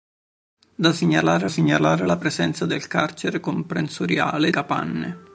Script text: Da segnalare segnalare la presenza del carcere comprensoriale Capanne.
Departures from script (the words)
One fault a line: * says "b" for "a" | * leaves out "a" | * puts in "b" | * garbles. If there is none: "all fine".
all fine